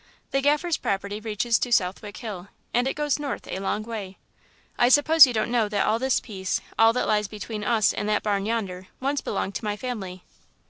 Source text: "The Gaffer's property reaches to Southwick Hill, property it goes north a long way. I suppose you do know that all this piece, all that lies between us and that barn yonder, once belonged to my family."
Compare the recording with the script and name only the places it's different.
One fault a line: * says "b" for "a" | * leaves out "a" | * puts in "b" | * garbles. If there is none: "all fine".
* says "and" for "property"
* says "don't" for "do"